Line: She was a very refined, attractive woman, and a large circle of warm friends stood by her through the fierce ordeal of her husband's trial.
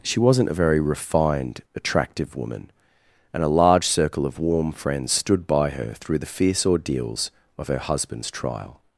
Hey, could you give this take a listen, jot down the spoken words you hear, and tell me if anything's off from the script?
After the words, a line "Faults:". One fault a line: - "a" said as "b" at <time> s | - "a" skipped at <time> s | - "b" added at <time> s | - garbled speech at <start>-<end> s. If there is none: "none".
She wasn't a very refined, attractive woman, and a large circle of warm friends stood by her through the fierce ordeals of her husband's trial.
Faults:
- "was" said as "wasn't" at 0.2 s
- "ordeal" said as "ordeals" at 6.6 s